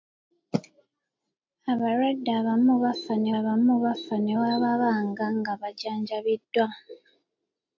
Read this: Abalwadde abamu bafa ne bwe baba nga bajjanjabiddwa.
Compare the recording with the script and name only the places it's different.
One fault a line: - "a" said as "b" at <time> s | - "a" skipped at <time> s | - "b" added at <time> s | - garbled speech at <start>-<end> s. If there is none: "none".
- "abamu bafa ne" added at 3.4 s